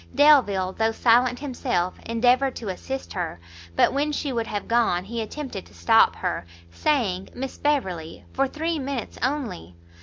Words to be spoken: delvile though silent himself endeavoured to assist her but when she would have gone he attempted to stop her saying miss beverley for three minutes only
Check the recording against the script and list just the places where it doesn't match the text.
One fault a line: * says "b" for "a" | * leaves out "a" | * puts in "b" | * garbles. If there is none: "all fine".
all fine